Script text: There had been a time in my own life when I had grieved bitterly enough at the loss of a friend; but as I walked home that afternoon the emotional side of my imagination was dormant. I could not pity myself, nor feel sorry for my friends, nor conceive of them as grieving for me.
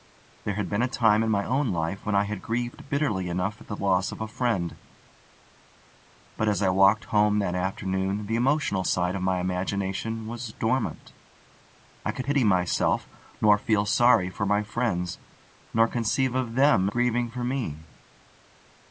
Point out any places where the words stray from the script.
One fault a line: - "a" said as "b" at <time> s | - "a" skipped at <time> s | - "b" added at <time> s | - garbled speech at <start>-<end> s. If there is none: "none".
- "not" skipped at 12.2 s
- "as" skipped at 16.9 s